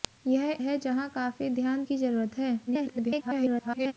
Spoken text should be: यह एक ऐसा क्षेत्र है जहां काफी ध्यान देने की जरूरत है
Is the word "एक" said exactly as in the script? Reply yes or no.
no